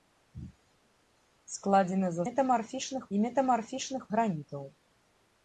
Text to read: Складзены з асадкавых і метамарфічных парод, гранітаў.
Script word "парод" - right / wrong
wrong